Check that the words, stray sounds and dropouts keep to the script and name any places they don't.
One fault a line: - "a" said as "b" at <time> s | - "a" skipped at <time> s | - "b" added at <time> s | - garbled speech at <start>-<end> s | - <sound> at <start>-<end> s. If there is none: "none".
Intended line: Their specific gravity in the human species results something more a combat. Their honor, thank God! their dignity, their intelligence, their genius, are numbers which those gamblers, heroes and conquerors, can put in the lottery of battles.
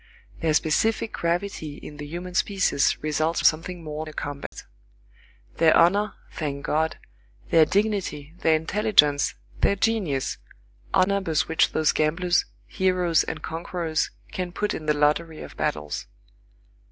- dropout at 4.5-4.5 s